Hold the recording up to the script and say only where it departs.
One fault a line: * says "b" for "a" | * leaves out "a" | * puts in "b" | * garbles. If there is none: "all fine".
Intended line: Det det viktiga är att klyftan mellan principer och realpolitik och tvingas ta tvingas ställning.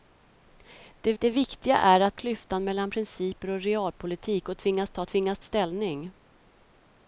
all fine